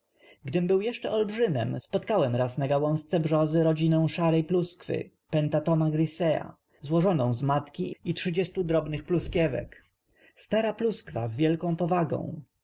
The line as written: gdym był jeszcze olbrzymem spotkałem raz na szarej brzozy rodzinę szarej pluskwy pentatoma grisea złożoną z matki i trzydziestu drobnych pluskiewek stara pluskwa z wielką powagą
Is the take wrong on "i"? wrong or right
right